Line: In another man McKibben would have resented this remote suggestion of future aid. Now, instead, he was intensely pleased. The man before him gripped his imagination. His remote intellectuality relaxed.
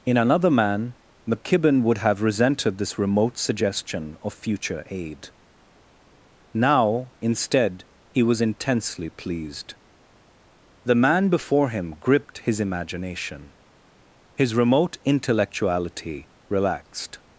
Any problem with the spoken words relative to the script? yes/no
no